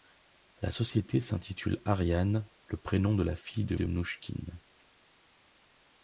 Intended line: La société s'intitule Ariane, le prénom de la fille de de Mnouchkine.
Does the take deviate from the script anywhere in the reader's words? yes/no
no